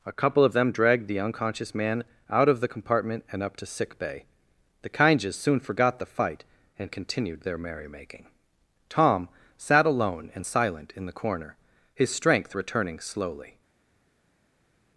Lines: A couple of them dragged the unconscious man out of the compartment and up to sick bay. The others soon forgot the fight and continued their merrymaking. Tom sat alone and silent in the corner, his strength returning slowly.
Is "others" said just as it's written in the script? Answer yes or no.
no